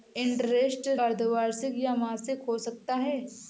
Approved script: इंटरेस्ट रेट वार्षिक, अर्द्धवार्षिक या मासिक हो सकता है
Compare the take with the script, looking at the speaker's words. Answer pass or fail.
fail